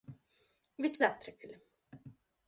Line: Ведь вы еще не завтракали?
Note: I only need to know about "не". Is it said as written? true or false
false